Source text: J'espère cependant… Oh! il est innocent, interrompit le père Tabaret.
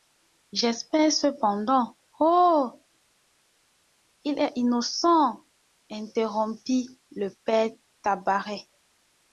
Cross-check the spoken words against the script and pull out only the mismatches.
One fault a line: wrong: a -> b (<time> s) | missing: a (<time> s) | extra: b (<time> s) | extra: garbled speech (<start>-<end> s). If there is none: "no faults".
no faults